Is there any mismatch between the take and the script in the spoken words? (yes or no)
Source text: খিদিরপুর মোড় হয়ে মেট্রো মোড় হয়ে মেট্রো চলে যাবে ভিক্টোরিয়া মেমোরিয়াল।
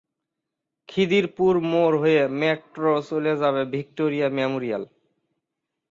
yes